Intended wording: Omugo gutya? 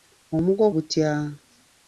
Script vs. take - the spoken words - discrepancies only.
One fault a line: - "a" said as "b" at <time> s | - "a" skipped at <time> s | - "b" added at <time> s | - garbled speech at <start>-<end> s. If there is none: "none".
none